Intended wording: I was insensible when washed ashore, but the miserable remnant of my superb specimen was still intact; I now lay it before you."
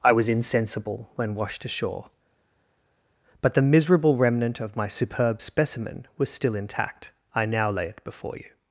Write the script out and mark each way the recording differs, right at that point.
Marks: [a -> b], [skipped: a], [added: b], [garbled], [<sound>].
I was insensible when washed ashore, but the miserable remnant of my superb specimen was still intact; I now lay it before you."